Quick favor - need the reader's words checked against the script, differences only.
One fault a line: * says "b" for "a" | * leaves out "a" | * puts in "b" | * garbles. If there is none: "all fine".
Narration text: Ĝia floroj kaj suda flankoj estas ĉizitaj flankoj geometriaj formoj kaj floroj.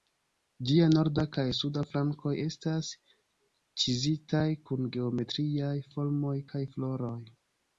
* says "norda" for "floroj"
* says "kun" for "flankoj"